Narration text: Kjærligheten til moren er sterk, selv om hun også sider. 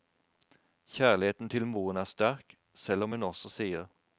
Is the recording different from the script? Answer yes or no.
no